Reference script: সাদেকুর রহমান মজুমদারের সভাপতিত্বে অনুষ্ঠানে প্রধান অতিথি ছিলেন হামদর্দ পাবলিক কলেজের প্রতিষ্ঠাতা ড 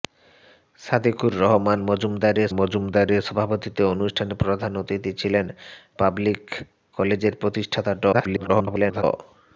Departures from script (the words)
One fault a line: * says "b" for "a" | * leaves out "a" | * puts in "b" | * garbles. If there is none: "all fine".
* puts in "মজুমদারের"
* leaves out "হামদর্দ"
* garbles